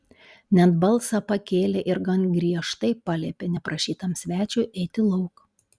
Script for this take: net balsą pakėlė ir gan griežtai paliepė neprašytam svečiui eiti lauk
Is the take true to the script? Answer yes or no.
yes